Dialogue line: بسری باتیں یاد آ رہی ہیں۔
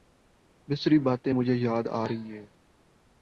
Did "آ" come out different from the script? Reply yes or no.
no